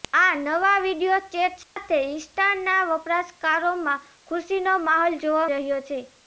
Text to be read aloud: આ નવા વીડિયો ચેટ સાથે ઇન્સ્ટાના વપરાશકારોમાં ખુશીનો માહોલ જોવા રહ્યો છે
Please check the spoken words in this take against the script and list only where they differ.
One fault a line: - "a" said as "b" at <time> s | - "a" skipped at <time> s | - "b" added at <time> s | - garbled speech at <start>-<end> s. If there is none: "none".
none